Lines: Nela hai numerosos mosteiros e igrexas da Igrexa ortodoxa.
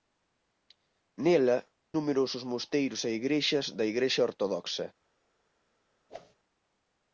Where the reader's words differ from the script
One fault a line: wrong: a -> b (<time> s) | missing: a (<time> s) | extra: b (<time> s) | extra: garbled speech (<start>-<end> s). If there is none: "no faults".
missing: hai (1.6 s)